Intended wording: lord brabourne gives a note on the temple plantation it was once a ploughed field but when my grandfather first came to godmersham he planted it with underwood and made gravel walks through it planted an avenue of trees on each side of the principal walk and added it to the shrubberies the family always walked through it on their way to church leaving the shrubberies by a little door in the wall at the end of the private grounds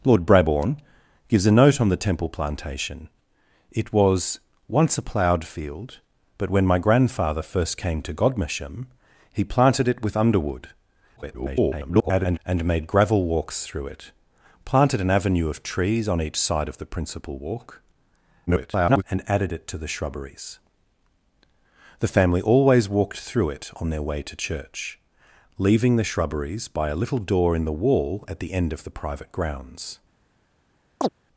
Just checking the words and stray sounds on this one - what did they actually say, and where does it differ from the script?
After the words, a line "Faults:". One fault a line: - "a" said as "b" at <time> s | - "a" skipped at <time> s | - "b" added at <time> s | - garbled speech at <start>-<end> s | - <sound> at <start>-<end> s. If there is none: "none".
lord brabourne gives a note on the temple plantation it was once a ploughed field but when my grandfather first came to godmersham he planted it with underwood [garbled] and made gravel walks through it planted an avenue of trees on each side of the principal walk [garbled] and added it to the shrubberies the family always walked through it on their way to church leaving the shrubberies by a little door in the wall at the end of the private grounds
Faults:
- garbled speech at 11.2-12.4 s
- garbled speech at 18.5-19.0 s
- chirp at 31.0-31.1 s